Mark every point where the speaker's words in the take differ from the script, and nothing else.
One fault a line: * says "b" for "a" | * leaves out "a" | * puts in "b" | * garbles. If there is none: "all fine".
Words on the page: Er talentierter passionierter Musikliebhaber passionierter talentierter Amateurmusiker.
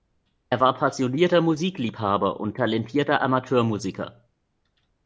* says "war" for "talentierter"
* says "und" for "passionierter"